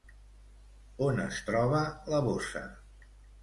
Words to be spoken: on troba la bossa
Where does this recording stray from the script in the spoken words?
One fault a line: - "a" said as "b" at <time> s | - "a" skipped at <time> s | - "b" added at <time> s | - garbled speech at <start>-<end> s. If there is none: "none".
- "es" added at 1.3 s